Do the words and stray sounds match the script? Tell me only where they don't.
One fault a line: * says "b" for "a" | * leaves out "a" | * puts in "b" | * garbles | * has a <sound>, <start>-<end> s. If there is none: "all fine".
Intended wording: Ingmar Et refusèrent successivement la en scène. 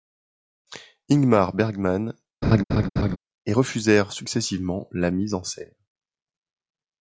* puts in "Bergman"
* has a laugh, 2.4-3.2 s
* puts in "mise"